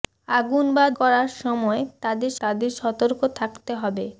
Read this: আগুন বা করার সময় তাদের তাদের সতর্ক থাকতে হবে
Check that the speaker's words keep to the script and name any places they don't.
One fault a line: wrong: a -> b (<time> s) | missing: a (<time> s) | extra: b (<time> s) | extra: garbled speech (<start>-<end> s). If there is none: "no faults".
no faults